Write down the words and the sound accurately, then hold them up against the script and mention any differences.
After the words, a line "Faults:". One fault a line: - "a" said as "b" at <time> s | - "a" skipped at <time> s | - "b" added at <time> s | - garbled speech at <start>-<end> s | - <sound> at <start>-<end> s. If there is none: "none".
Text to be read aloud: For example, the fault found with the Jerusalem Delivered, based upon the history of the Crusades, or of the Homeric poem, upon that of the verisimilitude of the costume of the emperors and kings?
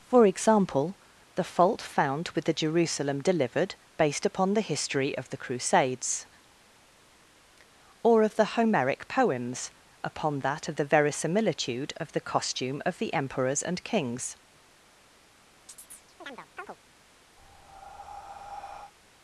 For example, the fault found with the Jerusalem Delivered, based upon the history of the Crusades, or of the Homeric poems, upon that of the verisimilitude of the costume of the emperors and kings?
Faults:
- "poem" said as "poems" at 9.1 s
- chirp at 15.7-16.8 s
- breath at 17.4-18.9 s